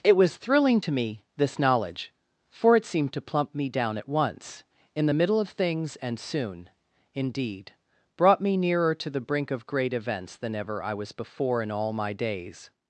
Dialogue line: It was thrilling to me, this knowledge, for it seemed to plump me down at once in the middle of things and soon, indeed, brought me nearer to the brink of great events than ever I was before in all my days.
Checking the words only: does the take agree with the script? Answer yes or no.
yes